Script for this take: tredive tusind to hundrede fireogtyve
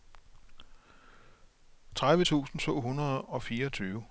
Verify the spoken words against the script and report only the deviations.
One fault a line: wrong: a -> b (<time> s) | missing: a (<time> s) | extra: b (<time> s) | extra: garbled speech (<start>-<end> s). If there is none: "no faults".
extra: og (3.2 s)